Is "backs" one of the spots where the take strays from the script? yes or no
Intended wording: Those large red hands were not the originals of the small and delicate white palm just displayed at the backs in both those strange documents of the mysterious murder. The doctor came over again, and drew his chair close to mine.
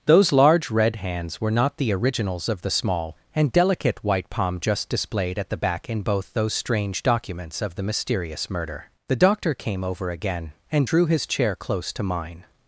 yes